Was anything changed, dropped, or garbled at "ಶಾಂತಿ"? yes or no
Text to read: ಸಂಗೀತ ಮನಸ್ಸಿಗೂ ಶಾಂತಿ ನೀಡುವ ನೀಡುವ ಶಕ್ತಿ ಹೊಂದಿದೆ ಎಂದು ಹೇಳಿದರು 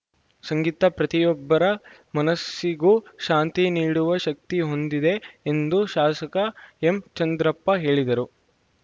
no